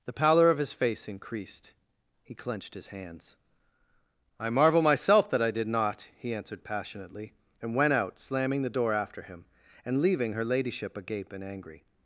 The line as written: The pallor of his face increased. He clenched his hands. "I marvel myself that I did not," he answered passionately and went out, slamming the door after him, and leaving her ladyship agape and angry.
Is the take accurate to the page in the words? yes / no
yes